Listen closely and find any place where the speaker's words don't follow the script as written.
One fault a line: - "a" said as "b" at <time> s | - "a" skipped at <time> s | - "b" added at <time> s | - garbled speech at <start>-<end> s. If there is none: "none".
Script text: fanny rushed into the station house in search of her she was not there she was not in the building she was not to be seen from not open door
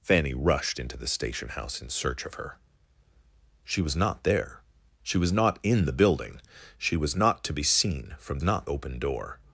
none